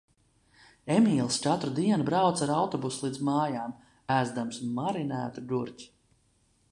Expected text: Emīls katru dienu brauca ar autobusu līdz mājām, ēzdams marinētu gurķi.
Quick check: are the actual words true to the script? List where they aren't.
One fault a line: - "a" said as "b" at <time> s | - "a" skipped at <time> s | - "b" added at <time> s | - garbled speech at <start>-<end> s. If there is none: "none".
none